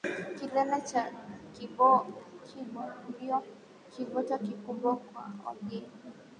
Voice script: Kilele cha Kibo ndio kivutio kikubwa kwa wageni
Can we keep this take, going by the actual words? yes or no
yes